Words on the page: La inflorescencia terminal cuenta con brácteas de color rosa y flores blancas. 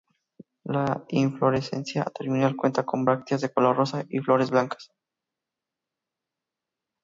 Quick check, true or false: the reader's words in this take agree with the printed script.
true